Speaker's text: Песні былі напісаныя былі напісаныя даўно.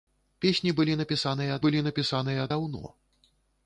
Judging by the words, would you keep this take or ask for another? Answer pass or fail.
pass